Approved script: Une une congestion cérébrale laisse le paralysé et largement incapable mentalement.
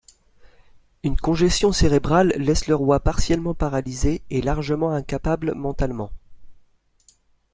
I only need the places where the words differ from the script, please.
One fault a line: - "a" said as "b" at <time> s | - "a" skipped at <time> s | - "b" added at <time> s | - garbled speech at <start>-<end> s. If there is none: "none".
- "une" skipped at 1.1 s
- "roi partiellement" added at 2.7 s